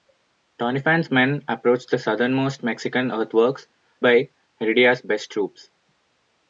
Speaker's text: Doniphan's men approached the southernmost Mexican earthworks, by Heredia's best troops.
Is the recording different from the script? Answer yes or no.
no